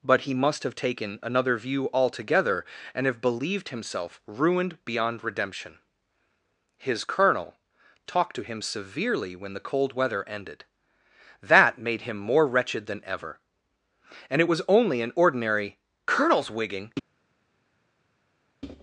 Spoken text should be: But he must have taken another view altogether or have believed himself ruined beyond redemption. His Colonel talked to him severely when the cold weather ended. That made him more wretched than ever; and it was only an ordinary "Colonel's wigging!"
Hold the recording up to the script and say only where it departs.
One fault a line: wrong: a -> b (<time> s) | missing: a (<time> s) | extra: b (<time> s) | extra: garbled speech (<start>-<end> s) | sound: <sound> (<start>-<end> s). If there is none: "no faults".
wrong: or -> and (2.9 s)